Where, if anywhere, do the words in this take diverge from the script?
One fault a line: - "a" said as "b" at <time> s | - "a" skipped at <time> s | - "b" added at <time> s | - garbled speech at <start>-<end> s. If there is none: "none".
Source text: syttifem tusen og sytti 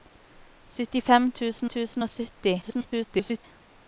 - "tusen" added at 1.7 s
- garbled speech at 2.6-3.4 s